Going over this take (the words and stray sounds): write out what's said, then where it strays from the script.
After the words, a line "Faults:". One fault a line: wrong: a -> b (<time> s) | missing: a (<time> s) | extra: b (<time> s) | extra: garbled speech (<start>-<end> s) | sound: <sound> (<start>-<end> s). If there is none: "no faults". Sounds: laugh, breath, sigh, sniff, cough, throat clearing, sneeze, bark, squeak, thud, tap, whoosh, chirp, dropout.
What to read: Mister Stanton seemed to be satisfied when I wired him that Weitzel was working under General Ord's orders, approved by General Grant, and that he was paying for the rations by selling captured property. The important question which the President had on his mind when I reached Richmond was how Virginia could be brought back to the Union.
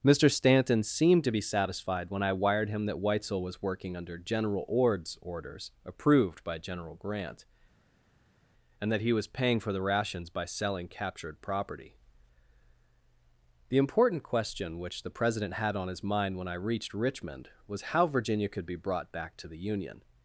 Mister Stanton seemed to be satisfied when I wired him that Weitzel was working under General Ord's orders, approved by General Grant, and that he was paying for the rations by selling captured property. The important question which the President had on his mind when I reached Richmond was how Virginia could be brought back to the Union.
Faults:
no faults